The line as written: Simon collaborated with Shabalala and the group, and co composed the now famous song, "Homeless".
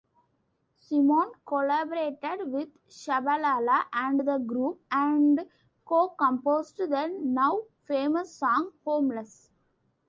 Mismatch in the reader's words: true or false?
false